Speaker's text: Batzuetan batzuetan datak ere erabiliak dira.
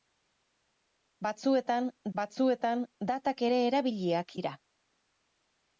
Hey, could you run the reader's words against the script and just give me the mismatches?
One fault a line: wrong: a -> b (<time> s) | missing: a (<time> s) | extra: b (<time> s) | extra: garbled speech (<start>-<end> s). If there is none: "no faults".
no faults